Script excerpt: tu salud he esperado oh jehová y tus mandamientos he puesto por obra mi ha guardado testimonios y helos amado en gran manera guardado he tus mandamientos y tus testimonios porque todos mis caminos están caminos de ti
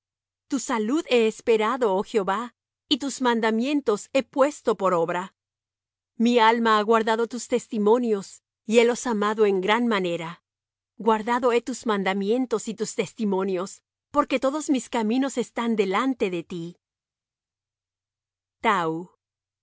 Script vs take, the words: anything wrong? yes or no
yes